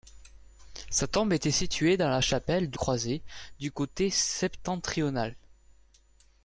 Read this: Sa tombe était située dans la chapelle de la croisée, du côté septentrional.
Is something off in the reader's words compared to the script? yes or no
yes